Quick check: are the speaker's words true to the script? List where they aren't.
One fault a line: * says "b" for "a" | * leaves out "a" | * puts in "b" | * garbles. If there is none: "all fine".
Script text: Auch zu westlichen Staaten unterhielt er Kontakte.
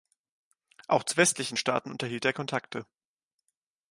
all fine